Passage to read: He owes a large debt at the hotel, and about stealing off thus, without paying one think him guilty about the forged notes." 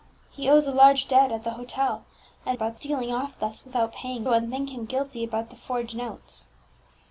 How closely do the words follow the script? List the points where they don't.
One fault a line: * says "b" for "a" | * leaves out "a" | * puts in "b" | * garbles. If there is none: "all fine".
all fine